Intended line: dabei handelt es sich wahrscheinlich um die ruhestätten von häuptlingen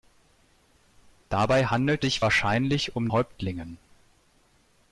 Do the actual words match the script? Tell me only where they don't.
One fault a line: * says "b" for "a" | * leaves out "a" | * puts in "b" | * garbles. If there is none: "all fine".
* leaves out "es"
* leaves out "die ruhestätten von"